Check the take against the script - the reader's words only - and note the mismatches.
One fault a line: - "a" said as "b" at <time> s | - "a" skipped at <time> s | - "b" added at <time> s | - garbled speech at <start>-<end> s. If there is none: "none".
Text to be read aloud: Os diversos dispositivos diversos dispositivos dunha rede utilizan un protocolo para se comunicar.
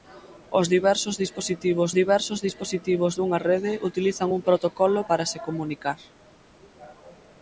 none